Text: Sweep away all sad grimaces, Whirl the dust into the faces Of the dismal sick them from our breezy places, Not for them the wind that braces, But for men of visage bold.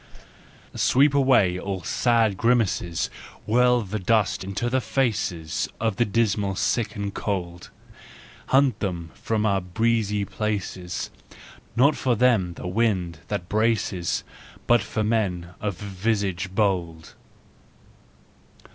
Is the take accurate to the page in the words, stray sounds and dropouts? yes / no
no